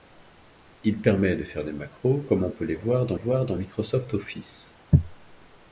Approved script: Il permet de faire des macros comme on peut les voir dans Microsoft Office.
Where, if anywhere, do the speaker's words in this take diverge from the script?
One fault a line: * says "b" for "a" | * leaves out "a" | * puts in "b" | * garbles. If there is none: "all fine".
* puts in "voir dans"